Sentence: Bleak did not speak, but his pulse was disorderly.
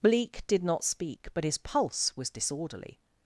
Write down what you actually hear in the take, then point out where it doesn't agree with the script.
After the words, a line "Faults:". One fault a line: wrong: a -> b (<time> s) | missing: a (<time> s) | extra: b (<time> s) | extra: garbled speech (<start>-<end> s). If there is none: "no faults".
Bleak did not speak, but his pulse was disorderly.
Faults:
no faults